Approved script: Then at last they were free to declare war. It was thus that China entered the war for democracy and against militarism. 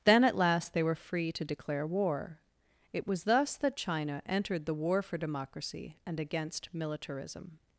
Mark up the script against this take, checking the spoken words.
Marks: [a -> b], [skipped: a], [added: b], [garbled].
Then at last they were free to declare war. It was thus that China entered the war for democracy and against militarism.